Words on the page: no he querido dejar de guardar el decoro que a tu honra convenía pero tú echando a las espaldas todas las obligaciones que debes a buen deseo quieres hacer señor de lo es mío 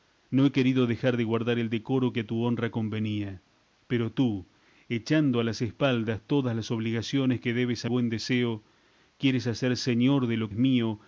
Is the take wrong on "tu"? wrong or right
right